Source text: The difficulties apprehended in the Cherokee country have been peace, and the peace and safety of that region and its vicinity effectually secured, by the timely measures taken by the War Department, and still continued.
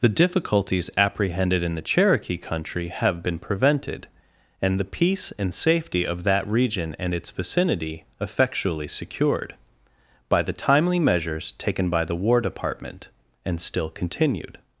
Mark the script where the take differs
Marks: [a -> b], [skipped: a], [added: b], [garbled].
The difficulties apprehended in the Cherokee country have been [peace, -> prevented] and the peace and safety of that region and its vicinity effectually secured, by the timely measures taken by the War Department, and still continued.